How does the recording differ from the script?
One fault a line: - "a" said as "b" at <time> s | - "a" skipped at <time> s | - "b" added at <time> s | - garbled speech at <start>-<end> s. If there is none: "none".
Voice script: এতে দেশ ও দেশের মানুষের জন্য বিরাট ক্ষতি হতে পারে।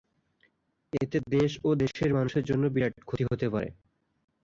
none